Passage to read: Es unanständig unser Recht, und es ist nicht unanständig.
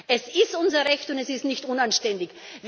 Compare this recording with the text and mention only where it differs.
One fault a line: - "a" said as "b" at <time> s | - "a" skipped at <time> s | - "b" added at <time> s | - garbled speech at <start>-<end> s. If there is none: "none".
- "unanständig" said as "ist" at 0.3 s